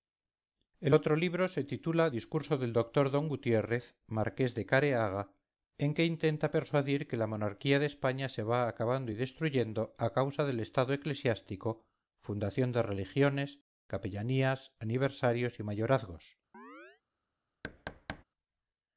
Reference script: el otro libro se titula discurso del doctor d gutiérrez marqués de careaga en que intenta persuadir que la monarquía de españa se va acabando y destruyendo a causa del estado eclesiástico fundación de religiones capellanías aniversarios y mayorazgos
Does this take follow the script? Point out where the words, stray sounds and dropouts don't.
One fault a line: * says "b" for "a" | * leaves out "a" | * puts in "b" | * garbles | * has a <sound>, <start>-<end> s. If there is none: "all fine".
* has a chirp, 16.5-17.0 s
* has a thud, 17.6-18.2 s